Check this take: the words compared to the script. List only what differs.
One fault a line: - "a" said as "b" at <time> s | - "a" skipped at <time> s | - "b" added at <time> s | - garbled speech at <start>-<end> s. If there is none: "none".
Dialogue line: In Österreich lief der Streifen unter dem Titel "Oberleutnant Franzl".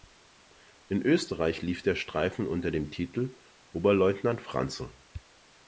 none